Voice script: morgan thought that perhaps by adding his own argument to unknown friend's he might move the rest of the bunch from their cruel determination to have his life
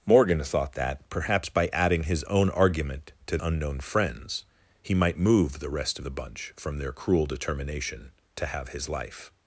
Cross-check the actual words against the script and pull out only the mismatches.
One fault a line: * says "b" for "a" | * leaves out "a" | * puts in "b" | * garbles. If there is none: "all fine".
all fine